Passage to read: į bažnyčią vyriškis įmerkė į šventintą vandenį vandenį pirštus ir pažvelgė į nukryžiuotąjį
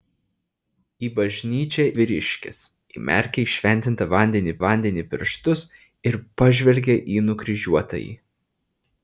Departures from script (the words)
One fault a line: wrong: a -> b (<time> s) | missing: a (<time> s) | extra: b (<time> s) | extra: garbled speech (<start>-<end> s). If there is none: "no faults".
no faults